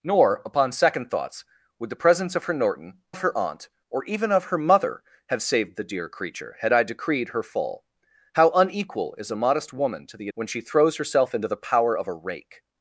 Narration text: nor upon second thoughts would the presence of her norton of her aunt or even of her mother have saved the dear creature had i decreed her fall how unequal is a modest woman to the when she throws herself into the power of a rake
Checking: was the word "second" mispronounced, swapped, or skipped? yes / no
no